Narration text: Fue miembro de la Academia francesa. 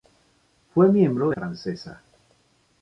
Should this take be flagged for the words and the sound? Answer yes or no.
yes